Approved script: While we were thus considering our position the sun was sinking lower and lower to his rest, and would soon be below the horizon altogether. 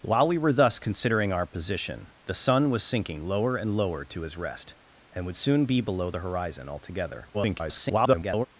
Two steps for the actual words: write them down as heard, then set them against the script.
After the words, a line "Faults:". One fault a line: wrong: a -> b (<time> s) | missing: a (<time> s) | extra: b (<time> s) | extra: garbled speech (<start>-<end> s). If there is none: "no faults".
While we were thus considering our position the sun was sinking lower and lower to his rest, and would soon be below the horizon altogether. [garbled]
Faults:
extra: garbled speech (7.3-8.5 s)